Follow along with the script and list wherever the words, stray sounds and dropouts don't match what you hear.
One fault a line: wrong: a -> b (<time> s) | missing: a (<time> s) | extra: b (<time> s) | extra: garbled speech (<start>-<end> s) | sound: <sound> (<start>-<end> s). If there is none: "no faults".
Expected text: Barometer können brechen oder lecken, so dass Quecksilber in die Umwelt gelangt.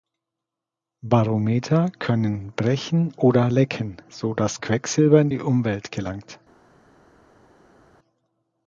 no faults